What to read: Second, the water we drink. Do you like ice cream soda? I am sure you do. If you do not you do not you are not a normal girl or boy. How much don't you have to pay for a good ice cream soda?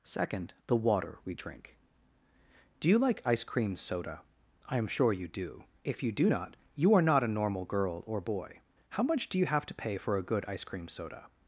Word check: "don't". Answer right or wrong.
wrong